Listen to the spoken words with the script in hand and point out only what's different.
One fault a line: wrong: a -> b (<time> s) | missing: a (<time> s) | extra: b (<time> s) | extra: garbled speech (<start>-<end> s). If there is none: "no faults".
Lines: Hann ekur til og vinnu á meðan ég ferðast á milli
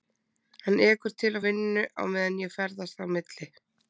no faults